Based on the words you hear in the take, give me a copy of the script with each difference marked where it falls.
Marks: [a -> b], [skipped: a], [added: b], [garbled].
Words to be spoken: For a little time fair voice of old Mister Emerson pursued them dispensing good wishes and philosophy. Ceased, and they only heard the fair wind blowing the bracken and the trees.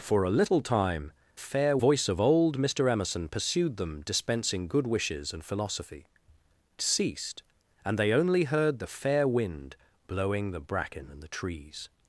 For a little time fair voice of old Mister Emerson pursued them dispensing good wishes and philosophy. Ceased, and they only heard the fair wind blowing the bracken and the trees.